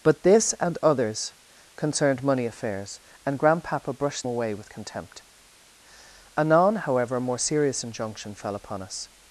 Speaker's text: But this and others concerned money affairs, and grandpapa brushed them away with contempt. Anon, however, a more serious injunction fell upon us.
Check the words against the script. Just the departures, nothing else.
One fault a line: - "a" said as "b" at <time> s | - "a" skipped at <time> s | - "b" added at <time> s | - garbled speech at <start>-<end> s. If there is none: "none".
- "them" skipped at 4.3 s